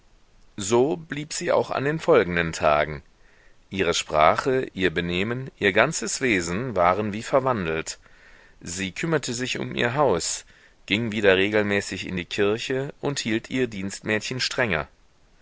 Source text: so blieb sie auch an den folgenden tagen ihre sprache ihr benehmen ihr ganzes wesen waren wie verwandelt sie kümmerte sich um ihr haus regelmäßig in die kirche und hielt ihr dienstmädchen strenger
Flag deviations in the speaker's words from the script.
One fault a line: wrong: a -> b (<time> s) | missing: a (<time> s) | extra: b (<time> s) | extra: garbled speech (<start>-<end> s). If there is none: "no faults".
extra: ging wieder (10.9 s)